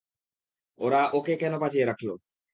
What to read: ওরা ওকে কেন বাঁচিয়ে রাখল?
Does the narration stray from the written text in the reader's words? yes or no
no